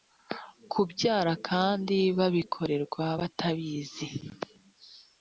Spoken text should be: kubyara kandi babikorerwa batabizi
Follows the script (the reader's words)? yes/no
yes